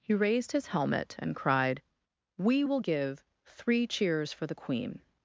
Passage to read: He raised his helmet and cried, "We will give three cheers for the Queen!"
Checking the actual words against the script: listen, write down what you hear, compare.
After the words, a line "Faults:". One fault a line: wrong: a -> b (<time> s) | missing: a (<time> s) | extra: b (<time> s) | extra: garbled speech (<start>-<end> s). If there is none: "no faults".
He raised his helmet and cried, "We will give three cheers for the Queen!"
Faults:
no faults